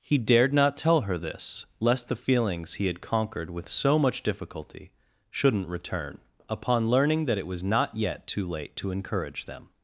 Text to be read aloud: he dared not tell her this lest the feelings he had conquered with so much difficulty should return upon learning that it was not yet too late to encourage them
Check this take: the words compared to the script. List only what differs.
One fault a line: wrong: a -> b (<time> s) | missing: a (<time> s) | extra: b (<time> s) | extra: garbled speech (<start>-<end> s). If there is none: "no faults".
wrong: should -> shouldn't (5.3 s)